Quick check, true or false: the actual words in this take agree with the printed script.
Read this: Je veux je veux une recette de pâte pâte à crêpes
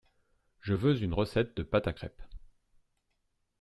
false